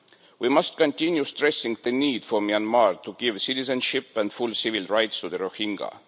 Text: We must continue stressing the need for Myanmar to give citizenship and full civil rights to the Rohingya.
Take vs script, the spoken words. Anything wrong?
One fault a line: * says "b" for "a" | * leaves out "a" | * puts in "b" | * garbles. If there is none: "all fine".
all fine